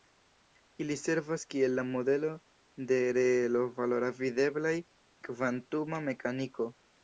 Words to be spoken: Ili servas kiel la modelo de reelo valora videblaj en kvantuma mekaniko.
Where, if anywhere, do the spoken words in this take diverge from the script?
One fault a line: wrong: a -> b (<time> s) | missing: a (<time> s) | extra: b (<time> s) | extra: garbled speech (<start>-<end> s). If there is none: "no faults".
missing: en (4.8 s)